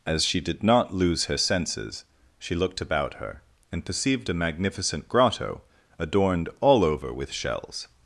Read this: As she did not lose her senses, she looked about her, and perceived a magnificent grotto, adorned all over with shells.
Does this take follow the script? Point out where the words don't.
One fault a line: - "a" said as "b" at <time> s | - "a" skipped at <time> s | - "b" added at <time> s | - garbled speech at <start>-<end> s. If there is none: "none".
none